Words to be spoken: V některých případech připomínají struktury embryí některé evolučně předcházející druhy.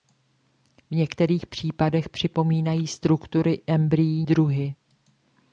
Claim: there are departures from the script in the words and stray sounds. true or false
true